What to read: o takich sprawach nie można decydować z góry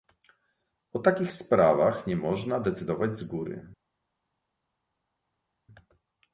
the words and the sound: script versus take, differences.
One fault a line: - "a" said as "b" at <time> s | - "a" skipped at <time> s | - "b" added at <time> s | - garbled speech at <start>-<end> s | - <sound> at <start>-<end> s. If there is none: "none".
none